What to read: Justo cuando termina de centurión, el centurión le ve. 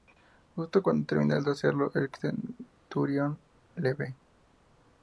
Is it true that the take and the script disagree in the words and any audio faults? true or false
true